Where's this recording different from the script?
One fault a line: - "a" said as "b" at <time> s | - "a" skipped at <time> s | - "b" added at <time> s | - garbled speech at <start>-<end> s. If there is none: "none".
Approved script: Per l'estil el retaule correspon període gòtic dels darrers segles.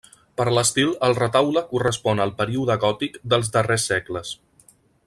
- "al" added at 2.2 s